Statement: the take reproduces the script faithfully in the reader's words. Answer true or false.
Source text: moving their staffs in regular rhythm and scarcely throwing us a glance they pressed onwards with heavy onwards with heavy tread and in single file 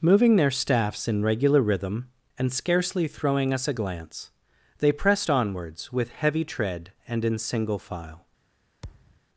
false